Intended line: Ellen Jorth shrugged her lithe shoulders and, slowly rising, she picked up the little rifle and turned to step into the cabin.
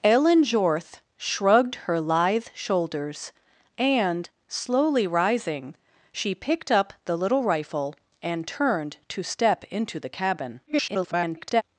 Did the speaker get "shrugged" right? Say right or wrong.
right